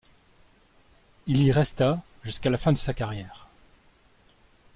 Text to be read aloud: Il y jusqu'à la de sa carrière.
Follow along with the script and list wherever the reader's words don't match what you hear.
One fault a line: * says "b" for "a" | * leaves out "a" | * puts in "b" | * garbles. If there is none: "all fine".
* puts in "resta"
* puts in "fin"